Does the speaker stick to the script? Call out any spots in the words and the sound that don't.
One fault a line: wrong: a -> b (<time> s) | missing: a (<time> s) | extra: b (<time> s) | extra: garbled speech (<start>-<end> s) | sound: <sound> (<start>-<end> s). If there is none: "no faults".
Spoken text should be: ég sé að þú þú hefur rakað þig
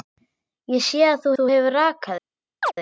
sound: chirp (2.6-2.7 s)